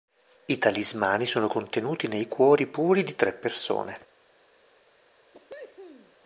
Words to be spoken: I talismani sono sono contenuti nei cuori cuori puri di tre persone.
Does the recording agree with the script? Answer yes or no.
no